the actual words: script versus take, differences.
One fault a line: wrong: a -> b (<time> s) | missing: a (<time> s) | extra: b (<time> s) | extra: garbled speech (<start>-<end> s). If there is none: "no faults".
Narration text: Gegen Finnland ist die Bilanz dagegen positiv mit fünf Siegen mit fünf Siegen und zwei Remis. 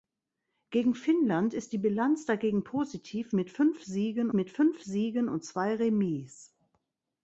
no faults